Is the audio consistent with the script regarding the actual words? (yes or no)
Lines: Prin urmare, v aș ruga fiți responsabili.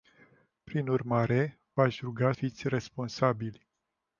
yes